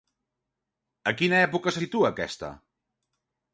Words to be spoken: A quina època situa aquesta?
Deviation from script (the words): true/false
false